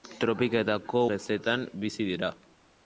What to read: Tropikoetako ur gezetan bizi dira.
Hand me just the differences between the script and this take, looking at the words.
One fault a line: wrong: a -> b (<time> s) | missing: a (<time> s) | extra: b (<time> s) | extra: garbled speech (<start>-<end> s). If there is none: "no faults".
missing: ur (1.0 s)